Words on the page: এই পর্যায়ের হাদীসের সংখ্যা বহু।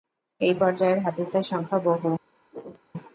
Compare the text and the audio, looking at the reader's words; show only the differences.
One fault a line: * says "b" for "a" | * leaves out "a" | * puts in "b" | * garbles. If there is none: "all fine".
all fine